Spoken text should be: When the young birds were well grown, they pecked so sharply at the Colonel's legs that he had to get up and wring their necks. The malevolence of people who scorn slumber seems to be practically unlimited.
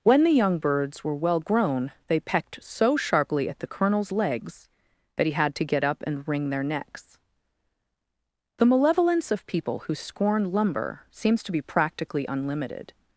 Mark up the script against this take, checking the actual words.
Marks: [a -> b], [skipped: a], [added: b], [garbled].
When the young birds were well grown, they pecked so sharply at the Colonel's legs that he had to get up and wring their necks. The malevolence of people who scorn [slumber -> lumber] seems to be practically unlimited.